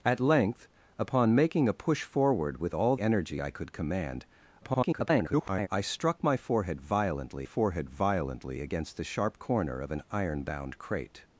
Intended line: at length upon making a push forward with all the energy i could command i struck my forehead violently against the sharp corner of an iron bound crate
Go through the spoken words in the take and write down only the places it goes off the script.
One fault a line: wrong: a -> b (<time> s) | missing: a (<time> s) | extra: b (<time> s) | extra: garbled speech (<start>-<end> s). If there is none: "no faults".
missing: the (3.0 s)
extra: garbled speech (4.6-5.7 s)
extra: forehead violently (7.4 s)